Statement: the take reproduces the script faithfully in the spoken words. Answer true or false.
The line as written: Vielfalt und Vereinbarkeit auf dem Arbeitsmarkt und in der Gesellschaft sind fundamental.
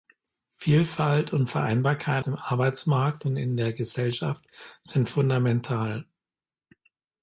false